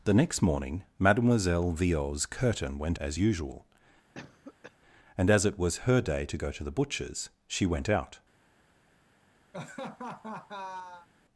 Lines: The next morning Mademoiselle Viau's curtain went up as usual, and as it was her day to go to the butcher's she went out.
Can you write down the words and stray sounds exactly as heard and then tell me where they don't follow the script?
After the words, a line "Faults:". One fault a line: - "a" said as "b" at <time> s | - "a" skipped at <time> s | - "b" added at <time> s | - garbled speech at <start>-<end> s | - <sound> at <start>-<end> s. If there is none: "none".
The next morning Mademoiselle Viau's curtain went as usual, and as it was her day to go to the butcher's she went out.
Faults:
- "up" skipped at 3.0 s
- cough at 4.1-4.8 s
- laugh at 9.5-11.1 s